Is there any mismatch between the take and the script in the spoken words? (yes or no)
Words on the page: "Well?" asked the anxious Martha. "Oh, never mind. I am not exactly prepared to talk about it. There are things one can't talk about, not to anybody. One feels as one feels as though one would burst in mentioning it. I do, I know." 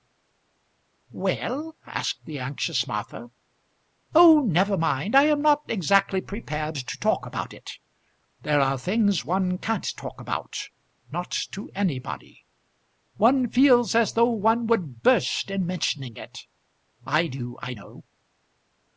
yes